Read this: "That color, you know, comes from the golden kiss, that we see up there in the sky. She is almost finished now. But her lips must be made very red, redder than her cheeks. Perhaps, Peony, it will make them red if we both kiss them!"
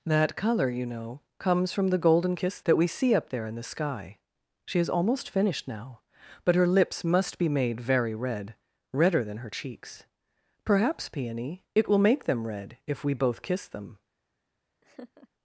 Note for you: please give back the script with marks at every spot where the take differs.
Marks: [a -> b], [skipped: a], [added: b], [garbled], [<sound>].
"That color, you know, comes from the golden kiss, that we see up there in the sky. She is almost finished now. But her lips must be made very red, redder than her cheeks. Perhaps, Peony, it will make them red if we both kiss them!" [laugh]